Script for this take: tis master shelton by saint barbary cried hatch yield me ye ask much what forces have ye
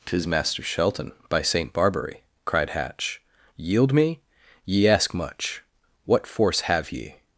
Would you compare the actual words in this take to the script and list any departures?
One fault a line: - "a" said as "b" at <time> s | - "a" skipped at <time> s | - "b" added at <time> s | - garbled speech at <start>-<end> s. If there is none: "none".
- "forces" said as "force" at 6.3 s